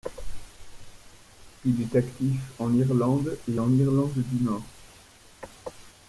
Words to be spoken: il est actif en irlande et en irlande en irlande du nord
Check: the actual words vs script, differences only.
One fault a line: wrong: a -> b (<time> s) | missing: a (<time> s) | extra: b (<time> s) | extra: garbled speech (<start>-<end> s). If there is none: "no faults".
missing: en irlande (4.1 s)